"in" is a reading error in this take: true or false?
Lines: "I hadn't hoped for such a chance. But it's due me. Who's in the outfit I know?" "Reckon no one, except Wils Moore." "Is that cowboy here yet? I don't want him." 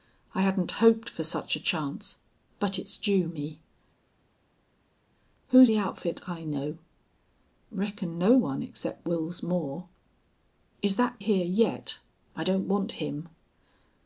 true